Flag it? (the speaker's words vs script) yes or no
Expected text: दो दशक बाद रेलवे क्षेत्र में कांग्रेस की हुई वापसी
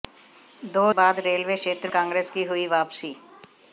yes